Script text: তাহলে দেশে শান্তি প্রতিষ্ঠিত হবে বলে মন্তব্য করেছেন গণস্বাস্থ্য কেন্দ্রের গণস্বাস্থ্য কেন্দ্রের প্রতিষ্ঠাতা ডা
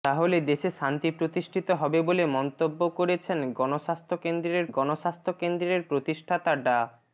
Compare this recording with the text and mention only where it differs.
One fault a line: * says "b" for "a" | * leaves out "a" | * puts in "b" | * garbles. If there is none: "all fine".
all fine